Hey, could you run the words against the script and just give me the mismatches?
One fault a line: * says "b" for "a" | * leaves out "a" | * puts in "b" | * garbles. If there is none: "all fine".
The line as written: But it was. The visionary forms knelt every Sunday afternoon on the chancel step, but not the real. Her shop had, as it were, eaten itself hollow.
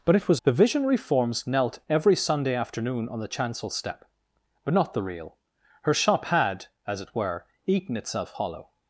all fine